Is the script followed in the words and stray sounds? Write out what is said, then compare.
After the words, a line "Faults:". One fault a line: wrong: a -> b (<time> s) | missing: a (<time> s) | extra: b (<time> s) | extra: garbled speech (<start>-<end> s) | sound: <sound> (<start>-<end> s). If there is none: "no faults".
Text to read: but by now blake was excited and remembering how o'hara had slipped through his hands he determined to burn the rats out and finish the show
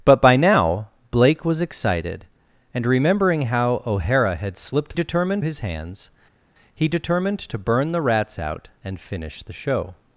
but by now blake was excited and remembering how o'hara had slipped determined his hands he determined to burn the rats out and finish the show
Faults:
wrong: through -> determined (4.9 s)